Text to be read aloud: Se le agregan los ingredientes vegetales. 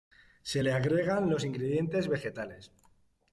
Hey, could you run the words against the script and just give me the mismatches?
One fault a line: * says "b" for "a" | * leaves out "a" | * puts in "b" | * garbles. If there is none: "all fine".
all fine